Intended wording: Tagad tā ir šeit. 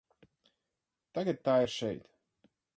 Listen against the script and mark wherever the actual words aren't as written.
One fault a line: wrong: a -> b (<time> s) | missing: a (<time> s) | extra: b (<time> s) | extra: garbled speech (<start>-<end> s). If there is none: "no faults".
no faults